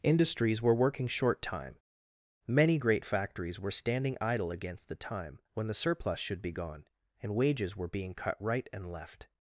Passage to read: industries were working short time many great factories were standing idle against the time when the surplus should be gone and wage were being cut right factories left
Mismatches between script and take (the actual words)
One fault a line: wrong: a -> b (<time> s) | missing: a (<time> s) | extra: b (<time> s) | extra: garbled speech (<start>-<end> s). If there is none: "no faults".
wrong: wage -> wages (7.4 s)
wrong: factories -> and (8.7 s)